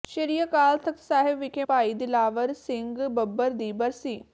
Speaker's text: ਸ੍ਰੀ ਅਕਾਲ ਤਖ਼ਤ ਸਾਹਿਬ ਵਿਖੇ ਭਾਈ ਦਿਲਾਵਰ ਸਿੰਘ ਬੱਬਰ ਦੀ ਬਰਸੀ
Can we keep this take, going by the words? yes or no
yes